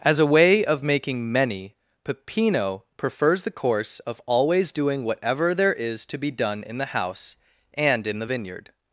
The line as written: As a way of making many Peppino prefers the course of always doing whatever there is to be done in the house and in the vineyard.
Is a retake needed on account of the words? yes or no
no